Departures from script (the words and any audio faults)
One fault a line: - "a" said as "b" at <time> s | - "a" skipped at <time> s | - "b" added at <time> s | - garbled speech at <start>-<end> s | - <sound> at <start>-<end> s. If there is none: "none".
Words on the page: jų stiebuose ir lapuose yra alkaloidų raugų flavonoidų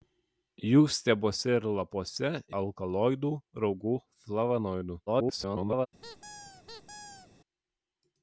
- "yra" skipped at 2.3 s
- garbled speech at 5.1-5.9 s
- squeak at 6.0-7.3 s